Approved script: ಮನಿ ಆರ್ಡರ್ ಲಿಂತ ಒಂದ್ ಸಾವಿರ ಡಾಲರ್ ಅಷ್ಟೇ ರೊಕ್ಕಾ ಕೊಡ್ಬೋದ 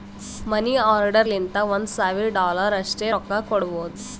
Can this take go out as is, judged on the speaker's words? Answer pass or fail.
pass